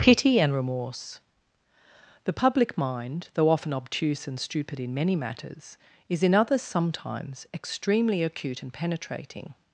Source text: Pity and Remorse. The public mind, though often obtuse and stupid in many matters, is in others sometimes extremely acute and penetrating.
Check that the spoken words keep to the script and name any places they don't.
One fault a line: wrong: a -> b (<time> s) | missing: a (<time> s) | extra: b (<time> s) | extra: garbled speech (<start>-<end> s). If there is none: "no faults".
no faults